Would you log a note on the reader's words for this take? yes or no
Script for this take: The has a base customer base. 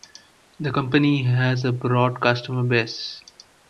yes